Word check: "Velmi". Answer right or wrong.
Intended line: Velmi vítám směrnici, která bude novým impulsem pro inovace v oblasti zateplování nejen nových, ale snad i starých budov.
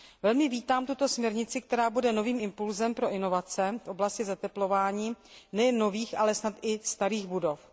right